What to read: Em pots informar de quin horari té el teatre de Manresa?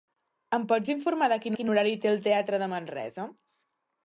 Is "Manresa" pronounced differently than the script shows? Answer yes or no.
no